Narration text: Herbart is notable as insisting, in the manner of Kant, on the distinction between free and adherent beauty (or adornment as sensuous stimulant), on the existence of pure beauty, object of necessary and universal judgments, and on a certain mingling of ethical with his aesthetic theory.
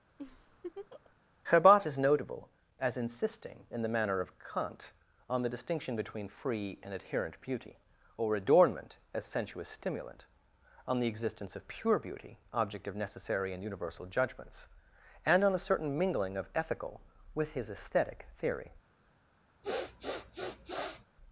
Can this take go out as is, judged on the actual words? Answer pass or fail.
pass